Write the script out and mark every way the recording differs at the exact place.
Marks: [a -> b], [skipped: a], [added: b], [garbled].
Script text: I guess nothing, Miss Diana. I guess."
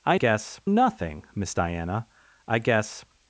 I guess nothing, Miss Diana. I guess."